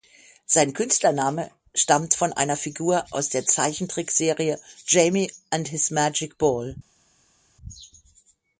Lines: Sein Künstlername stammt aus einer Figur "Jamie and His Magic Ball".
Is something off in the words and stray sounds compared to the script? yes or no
yes